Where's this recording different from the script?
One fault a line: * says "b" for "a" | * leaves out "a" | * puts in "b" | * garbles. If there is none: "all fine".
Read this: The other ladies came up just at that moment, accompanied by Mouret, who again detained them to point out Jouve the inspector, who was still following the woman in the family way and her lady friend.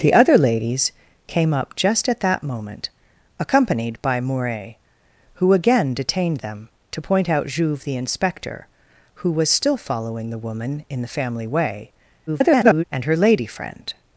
* garbles